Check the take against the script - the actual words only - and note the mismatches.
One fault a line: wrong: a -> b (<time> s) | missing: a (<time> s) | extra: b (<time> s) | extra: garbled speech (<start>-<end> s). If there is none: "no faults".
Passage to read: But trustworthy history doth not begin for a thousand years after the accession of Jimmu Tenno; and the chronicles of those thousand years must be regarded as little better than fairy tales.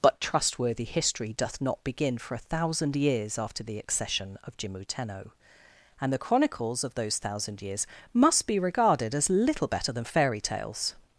no faults